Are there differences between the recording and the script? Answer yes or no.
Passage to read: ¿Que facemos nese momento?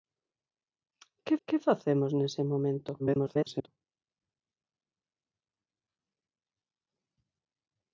yes